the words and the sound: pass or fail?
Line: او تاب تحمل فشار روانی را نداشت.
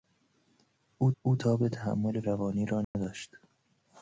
fail